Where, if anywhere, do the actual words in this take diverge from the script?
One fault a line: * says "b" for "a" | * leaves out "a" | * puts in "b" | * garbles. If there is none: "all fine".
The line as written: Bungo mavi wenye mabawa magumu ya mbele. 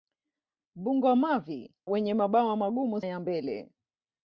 all fine